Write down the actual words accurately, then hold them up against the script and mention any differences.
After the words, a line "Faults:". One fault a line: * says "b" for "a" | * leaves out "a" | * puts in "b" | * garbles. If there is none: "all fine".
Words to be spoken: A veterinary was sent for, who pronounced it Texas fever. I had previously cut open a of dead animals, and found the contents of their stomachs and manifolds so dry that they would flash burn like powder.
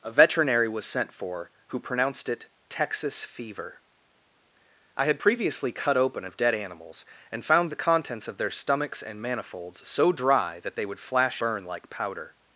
A veterinary was sent for, who pronounced it Texas fever. I had previously cut open a of dead animals, and found the contents of their stomachs and manifolds so dry that they would flash burn like powder.
Faults:
all fine